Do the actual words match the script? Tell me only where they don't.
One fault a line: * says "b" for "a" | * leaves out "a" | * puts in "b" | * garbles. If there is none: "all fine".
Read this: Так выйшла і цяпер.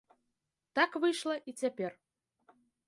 all fine